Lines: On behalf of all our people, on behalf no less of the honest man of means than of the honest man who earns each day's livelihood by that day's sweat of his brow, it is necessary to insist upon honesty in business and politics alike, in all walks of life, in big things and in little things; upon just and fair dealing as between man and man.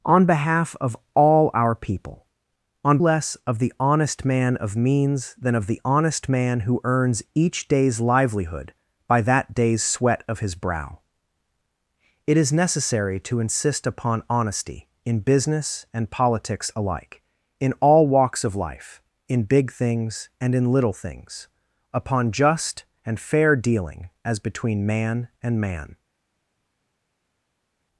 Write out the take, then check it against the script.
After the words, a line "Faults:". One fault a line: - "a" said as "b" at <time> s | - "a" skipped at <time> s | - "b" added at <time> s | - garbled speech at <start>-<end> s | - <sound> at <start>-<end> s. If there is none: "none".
On behalf of all our people, on less of the honest man of means than of the honest man who earns each day's livelihood by that day's sweat of his brow, it is necessary to insist upon honesty in business and politics alike, in all walks of life, in big things and in little things; upon just and fair dealing as between man and man.
Faults:
- "behalf no" skipped at 3.0 s